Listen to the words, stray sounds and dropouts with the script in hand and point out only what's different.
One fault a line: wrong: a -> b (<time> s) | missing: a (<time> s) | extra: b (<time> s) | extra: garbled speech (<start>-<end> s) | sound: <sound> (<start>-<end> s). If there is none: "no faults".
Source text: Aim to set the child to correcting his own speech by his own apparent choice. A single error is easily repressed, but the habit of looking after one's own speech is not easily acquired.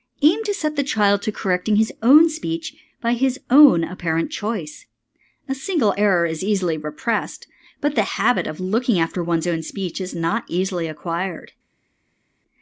no faults